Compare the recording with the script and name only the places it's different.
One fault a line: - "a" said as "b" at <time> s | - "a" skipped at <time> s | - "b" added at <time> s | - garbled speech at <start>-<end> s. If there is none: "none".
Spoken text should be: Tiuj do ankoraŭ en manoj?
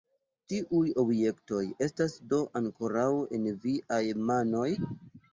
- "objektoj estas" added at 1.0 s
- "viaj" added at 3.7 s